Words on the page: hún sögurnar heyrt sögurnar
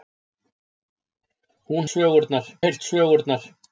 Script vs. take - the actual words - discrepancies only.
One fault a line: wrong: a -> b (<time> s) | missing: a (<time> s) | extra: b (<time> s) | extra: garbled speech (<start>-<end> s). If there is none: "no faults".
no faults